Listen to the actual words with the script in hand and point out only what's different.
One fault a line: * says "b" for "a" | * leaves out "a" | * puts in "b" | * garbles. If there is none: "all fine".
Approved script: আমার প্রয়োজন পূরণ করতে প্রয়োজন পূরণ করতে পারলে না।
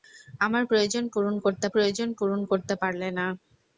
all fine